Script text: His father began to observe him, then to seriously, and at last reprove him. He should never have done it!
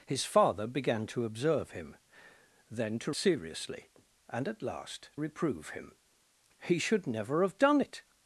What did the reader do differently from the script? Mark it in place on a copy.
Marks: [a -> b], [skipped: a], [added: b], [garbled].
His father began to observe him, then to seriously, and at last reprove him. He should never have done it!